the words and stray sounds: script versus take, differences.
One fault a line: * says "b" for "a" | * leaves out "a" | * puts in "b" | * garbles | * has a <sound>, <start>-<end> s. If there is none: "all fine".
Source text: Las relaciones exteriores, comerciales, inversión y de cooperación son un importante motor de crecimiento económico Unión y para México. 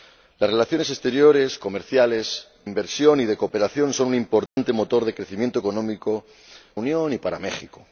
* has a dropout, 4.5-4.6 s